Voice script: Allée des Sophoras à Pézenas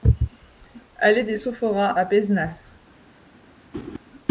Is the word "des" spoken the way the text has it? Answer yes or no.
yes